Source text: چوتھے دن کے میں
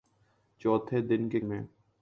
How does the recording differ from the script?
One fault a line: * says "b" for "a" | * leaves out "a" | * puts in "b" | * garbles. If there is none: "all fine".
all fine